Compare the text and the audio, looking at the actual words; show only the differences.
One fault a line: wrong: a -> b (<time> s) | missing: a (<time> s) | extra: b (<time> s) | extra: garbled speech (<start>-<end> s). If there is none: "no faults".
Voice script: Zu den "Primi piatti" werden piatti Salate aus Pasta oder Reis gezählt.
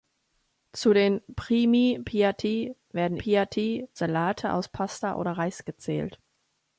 no faults